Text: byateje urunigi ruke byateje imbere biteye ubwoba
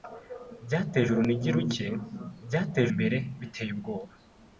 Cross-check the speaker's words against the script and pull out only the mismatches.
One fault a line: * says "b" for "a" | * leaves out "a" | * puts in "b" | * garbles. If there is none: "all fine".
all fine